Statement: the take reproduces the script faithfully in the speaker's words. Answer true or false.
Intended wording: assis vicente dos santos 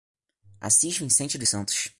true